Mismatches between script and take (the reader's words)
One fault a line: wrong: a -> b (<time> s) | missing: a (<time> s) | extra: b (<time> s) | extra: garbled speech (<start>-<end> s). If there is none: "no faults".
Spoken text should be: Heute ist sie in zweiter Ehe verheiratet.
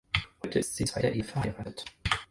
no faults